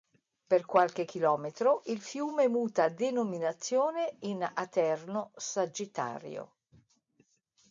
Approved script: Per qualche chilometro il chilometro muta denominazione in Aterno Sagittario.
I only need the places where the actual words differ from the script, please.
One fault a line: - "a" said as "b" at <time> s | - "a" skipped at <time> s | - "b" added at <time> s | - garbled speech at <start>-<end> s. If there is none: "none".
- "chilometro" said as "fiume" at 2.0 s